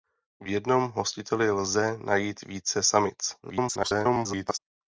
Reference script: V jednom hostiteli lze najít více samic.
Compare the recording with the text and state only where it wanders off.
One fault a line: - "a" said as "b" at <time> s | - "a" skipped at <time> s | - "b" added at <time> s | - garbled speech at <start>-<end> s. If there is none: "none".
- garbled speech at 3.4-4.6 s